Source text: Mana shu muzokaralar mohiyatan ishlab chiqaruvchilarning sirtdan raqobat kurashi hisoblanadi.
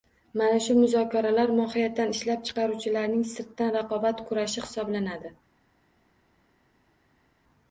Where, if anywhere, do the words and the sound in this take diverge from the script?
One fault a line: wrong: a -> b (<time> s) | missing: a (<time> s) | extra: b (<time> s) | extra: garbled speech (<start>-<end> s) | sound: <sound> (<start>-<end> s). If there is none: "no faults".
no faults